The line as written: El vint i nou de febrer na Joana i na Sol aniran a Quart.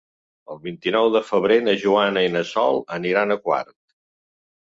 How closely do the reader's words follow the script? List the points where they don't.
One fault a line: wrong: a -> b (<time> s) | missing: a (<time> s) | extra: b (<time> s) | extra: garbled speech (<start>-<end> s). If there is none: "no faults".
no faults